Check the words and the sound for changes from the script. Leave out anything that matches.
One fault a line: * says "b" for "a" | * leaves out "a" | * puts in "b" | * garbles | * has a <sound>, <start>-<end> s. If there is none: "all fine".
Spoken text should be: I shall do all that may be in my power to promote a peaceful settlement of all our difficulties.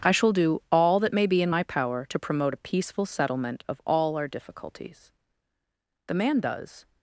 * puts in "The man does"